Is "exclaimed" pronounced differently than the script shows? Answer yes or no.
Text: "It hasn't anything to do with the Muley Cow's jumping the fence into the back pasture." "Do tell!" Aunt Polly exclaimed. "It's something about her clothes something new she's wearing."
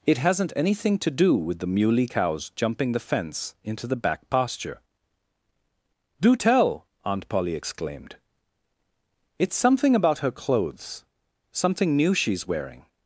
no